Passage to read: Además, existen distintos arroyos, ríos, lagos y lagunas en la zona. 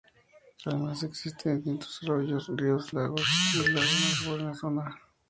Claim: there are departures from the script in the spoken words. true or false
false